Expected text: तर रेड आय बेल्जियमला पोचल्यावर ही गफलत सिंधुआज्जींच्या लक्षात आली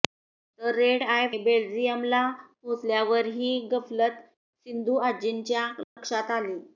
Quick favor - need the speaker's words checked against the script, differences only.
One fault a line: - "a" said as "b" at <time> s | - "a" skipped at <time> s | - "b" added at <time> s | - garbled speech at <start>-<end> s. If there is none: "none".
none